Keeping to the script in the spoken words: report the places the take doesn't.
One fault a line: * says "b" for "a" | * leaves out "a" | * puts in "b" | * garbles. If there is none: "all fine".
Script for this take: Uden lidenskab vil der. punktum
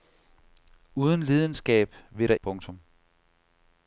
all fine